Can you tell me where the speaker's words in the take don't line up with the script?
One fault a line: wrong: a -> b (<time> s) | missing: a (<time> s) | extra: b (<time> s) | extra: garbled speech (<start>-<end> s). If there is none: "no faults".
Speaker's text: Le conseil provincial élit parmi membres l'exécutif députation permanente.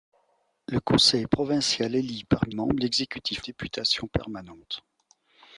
no faults